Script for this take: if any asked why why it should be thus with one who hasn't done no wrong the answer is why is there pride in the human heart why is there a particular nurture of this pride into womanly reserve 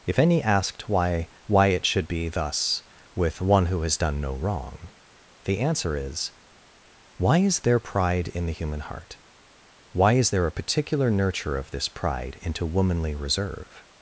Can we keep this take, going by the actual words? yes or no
no